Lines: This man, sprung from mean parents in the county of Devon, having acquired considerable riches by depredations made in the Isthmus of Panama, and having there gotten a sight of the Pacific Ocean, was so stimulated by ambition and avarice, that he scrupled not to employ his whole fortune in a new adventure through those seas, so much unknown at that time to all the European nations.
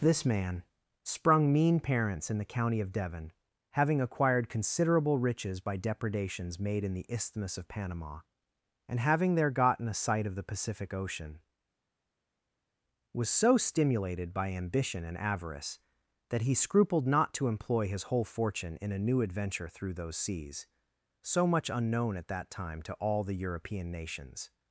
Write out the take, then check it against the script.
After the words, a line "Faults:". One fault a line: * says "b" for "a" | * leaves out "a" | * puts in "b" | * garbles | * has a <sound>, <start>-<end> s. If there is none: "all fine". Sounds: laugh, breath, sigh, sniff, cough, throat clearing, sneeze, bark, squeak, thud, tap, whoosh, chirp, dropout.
This man, sprung mean parents in the county of Devon, having acquired considerable riches by depredations made in the Isthmus of Panama, and having there gotten a sight of the Pacific Ocean, was so stimulated by ambition and avarice, that he scrupled not to employ his whole fortune in a new adventure through those seas, so much unknown at that time to all the European nations.
Faults:
* leaves out "from"